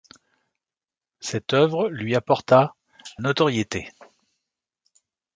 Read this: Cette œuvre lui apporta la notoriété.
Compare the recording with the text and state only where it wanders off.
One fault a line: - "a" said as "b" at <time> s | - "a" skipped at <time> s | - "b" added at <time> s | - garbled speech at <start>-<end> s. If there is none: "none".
- "la" skipped at 2.7 s